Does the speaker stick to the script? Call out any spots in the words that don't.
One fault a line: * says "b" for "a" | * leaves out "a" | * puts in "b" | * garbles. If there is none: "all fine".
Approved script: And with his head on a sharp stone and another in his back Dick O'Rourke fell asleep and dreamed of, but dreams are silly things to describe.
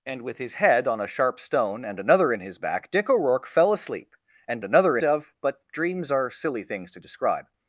* says "another" for "dreamed"